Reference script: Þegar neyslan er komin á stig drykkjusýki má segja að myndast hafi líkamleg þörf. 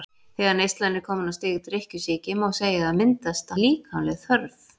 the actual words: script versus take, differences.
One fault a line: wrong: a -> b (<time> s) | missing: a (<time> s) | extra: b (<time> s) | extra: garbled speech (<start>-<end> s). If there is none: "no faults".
missing: hafi (3.5 s)